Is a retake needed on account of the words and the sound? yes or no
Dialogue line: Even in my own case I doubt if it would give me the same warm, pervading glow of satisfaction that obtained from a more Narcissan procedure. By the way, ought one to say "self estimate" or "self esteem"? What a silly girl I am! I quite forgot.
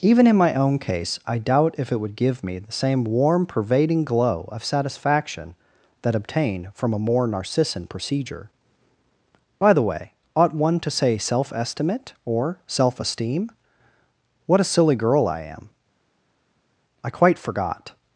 no